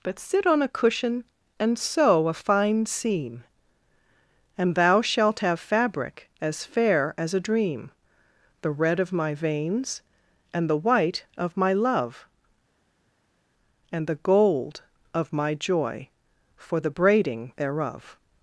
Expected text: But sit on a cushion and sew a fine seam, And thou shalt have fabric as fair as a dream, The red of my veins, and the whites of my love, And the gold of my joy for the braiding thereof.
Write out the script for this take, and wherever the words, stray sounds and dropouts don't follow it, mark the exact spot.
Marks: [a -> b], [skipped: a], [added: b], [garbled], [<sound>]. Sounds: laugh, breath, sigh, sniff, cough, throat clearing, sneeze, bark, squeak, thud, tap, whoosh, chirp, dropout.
But sit on a cushion and sew a fine seam, And thou shalt have fabric as fair as a dream, The red of my veins, and the [whites -> white] of my love, And the gold of my joy for the braiding thereof.